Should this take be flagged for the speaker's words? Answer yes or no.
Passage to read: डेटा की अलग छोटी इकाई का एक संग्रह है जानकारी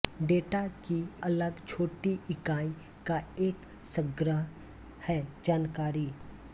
no